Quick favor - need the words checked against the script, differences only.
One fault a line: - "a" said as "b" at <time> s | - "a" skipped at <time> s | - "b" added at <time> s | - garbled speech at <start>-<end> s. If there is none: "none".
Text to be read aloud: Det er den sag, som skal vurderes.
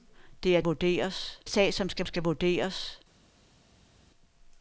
- "den" said as "vurderes" at 0.6 s
- "skal" added at 2.0 s